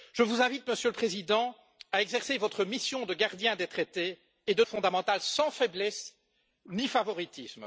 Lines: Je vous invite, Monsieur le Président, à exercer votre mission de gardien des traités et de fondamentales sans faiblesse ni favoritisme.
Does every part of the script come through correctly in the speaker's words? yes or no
yes